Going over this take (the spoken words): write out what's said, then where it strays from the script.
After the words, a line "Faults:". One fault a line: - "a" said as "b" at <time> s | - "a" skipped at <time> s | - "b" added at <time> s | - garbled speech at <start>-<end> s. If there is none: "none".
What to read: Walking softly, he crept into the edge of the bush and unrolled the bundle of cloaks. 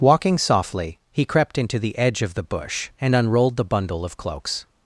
Walking softly, he crept into the edge of the bush and unrolled the bundle of cloaks.
Faults:
none